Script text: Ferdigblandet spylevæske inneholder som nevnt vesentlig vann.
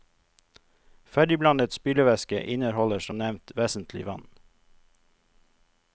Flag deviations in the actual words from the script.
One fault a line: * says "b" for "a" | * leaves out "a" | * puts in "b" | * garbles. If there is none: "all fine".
all fine